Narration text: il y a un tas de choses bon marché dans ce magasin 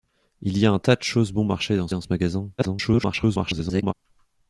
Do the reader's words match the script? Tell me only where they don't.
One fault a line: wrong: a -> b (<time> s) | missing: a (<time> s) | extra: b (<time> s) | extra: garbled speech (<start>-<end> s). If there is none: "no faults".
extra: dans (1.9 s)
extra: garbled speech (2.6-3.9 s)